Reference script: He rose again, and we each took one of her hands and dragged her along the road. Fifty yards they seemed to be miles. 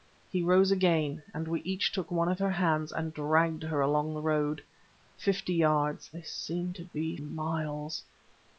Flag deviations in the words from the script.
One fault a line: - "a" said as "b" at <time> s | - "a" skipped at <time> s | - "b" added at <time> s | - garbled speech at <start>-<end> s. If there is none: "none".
none